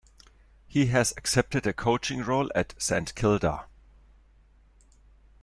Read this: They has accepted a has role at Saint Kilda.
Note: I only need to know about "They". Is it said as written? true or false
false